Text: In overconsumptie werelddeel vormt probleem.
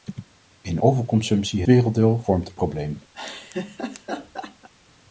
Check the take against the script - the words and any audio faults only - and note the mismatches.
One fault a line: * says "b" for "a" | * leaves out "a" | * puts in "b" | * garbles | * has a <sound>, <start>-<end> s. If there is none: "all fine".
* has a laugh, 3.1-4.7 s